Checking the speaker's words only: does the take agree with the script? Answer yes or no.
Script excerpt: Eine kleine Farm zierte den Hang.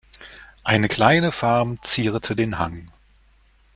yes